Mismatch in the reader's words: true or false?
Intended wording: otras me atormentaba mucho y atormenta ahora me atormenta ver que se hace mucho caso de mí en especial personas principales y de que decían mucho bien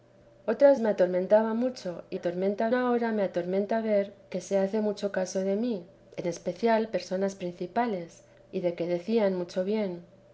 false